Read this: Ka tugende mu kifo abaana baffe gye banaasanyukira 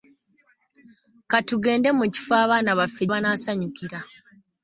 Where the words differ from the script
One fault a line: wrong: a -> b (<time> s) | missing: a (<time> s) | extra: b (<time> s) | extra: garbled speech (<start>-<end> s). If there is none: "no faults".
missing: gye (3.0 s)